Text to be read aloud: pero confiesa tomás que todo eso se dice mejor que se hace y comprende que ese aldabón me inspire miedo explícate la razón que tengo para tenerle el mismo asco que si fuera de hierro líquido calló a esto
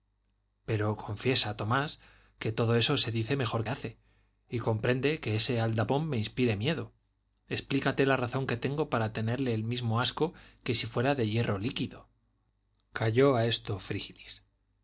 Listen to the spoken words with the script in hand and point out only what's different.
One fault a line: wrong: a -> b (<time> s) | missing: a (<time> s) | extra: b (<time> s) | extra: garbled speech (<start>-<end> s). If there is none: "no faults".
missing: que se (3.6 s)